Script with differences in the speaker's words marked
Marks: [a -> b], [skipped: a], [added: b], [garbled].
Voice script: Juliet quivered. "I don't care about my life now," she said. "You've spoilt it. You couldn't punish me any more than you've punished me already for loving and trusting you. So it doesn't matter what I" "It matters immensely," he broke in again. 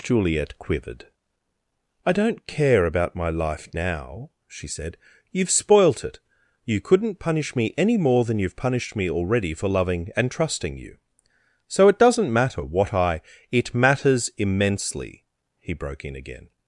Juliet quivered. "I don't care about my life now," she said. "You've spoilt it. You couldn't punish me any more than you've punished me already for loving and trusting you. So it doesn't matter what I" "It matters immensely," he broke in again.